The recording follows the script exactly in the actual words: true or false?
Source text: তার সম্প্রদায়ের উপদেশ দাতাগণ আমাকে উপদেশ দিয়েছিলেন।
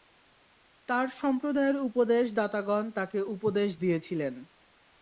false